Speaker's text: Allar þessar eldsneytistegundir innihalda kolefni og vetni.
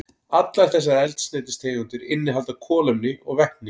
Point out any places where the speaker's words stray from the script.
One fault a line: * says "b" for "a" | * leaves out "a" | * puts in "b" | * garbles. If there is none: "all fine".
all fine